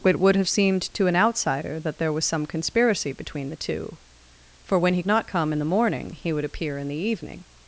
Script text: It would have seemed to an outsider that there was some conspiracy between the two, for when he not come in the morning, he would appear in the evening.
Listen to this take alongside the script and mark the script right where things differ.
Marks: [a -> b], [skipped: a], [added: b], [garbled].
It would have seemed to an outsider that there was some conspiracy between the two, for when he not come in the morning, he would appear in the evening.